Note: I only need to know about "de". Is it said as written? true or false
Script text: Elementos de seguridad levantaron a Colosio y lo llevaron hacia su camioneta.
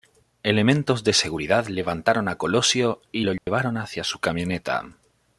true